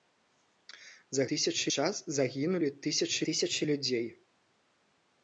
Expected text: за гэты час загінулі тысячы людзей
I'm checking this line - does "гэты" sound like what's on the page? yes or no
no